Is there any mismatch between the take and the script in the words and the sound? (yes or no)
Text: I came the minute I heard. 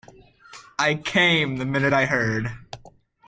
no